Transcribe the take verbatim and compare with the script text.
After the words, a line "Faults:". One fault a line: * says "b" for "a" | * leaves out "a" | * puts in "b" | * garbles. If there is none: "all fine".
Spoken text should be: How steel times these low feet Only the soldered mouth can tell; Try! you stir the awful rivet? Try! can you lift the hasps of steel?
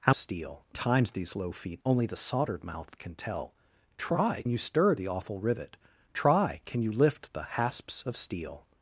How steel times these low feet Only the soldered mouth can tell; Try! you stir the awful rivet? Try! can you lift the hasps of steel?
Faults:
all fine